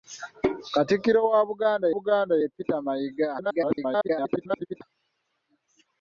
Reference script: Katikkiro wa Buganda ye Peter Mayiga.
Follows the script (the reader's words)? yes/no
no